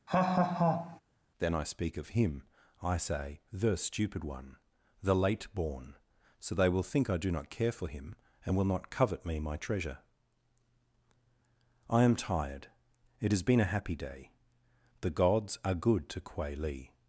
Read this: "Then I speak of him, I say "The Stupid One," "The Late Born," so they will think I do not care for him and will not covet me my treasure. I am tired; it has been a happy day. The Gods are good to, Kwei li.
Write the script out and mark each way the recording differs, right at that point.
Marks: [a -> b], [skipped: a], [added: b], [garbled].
"Then I speak of him, I say "The Stupid One," "The Late Born," so they will think I do not care for him and will not covet me my treasure. I am tired; it has been a happy day. The Gods are good to, Kwei li.